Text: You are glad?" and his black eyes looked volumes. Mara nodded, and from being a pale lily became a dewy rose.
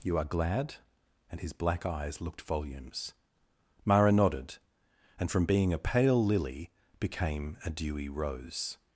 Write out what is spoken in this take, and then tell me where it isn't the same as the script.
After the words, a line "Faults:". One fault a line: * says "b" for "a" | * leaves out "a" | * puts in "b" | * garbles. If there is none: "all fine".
You are glad?" and his black eyes looked volumes. Mara nodded, and from being a pale lily became a dewy rose.
Faults:
all fine